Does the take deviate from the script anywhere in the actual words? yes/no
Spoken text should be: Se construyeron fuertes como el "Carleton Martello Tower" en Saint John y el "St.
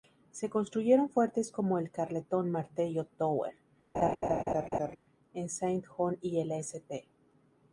no